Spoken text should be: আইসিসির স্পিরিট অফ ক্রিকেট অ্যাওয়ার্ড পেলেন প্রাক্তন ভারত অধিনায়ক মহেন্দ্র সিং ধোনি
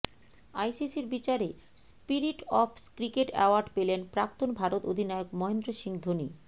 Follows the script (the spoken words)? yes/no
no